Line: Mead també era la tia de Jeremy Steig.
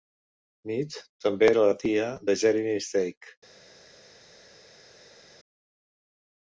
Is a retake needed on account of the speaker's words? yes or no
no